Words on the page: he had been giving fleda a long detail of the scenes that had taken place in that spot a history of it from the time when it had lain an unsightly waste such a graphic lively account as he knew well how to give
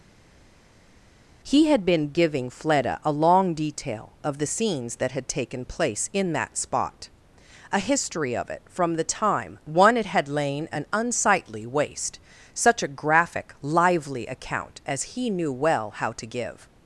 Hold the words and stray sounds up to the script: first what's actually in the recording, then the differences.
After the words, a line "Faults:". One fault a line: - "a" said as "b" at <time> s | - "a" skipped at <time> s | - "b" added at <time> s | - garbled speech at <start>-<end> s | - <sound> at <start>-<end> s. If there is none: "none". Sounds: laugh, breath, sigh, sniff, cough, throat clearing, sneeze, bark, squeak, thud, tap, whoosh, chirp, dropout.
he had been giving fleda a long detail of the scenes that had taken place in that spot a history of it from the time one it had lain an unsightly waste such a graphic lively account as he knew well how to give
Faults:
- "when" said as "one" at 9.6 s